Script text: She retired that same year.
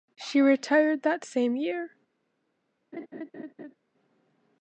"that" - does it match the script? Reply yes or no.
yes